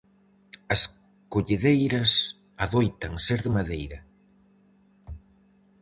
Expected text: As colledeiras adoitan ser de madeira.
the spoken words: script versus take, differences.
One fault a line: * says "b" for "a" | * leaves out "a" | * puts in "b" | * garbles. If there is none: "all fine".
all fine